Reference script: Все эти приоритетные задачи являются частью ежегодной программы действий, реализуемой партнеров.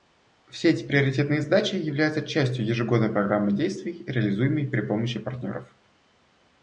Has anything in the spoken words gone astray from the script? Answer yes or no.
yes